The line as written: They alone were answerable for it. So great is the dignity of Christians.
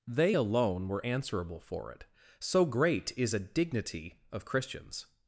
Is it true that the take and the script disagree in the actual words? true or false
true